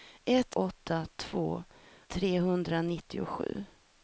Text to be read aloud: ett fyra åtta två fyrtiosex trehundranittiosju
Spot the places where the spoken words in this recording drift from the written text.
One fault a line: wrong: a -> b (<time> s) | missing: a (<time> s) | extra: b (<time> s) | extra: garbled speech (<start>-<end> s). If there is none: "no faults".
missing: fyra (0.6 s)
missing: fyrtiosex (1.6 s)